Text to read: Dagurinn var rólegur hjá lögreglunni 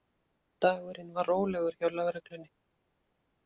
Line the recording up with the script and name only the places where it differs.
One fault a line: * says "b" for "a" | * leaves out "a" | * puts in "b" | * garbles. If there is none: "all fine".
all fine